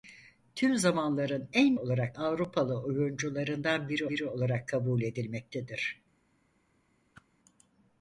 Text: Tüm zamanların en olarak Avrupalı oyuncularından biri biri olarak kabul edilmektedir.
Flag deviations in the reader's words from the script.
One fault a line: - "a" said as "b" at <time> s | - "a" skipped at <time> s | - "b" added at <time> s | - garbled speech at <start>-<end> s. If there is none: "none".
none